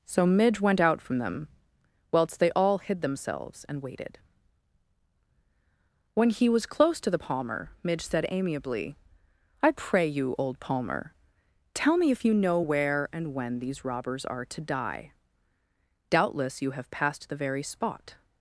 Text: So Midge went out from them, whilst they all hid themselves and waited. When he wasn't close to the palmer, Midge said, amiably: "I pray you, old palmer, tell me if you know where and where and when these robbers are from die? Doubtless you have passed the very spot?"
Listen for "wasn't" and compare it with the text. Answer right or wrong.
wrong